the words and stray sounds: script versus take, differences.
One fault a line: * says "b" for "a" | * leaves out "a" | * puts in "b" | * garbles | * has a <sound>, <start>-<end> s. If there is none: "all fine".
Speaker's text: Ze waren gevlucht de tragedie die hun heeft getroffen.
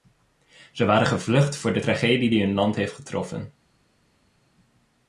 * puts in "voor"
* puts in "land"